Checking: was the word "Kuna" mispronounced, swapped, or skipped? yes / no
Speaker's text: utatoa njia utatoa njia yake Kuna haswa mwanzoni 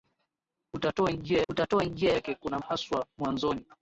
no